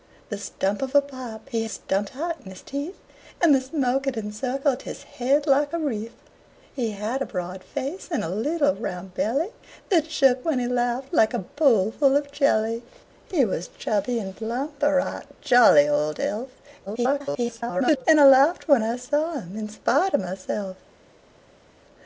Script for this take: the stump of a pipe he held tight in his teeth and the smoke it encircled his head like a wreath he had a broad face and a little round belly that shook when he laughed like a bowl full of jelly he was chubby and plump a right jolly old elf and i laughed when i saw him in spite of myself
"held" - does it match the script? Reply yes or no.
no